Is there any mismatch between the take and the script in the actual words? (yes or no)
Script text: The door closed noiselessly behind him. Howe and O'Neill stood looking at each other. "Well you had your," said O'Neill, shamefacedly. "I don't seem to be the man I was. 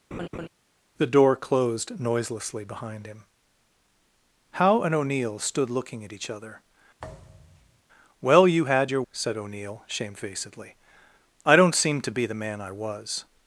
no